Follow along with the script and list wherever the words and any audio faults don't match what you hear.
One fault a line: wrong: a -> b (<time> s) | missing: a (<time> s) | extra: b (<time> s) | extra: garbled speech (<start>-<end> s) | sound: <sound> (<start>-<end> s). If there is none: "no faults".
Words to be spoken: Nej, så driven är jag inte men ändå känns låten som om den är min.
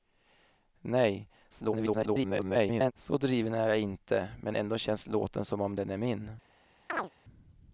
extra: garbled speech (1.5-2.9 s)
sound: chirp (6.9-7.1 s)